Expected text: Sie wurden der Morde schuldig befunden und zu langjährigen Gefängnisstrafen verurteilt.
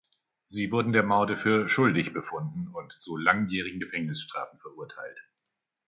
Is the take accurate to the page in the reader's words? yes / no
no